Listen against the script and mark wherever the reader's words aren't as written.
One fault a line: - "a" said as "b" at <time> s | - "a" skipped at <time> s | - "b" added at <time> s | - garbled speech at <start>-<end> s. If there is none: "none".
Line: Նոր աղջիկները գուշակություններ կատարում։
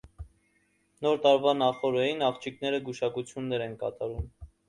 - "տարվա նախօրեին" added at 1.2 s
- "են" added at 3.7 s